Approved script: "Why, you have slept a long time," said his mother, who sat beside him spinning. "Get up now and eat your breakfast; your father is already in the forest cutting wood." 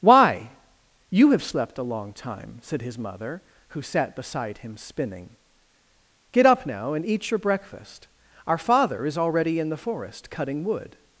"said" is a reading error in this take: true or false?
false